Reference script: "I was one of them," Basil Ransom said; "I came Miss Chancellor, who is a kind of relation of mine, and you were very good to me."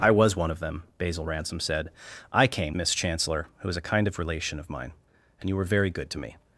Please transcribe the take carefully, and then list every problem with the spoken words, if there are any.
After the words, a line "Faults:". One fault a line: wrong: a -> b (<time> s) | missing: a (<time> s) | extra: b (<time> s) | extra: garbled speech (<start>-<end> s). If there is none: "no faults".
"I was one of them," Basil Ransom said; "I came Miss Chancellor, who is a kind of relation of mine, and you were very good to me."
Faults:
no faults